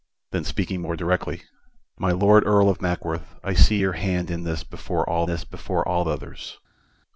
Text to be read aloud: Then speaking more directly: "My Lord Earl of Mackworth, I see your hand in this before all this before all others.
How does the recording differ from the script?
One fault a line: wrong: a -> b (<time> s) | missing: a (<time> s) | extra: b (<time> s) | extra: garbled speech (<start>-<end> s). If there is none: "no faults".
no faults